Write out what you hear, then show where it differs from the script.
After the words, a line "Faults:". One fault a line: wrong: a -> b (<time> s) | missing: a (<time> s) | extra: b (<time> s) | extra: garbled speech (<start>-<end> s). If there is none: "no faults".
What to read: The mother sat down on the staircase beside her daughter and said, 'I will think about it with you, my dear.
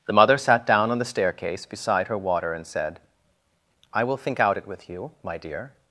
The mother sat down on the staircase beside her water and said, 'I will think out it with you, my dear.
Faults:
wrong: daughter -> water (2.2 s)
wrong: about -> out (4.4 s)